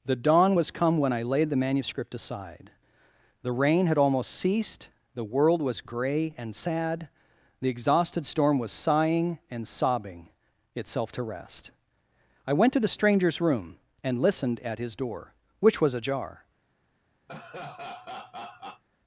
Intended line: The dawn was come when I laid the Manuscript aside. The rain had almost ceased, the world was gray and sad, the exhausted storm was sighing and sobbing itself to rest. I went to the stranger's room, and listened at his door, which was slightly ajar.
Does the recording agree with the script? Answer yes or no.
no